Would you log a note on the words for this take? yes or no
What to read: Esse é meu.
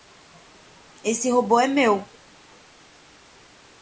yes